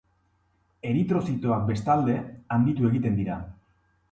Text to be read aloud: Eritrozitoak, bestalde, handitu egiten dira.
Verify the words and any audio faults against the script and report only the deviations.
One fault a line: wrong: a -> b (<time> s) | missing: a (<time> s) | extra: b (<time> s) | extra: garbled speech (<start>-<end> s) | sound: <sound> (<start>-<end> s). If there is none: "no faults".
no faults